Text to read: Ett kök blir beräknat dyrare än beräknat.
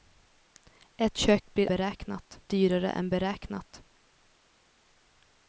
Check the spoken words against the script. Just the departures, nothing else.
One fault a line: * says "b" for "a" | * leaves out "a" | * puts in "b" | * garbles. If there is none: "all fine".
all fine